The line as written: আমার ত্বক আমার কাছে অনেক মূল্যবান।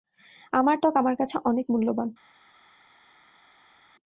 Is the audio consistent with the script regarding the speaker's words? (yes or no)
yes